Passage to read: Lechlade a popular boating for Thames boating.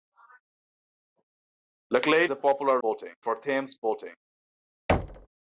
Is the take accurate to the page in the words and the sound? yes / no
no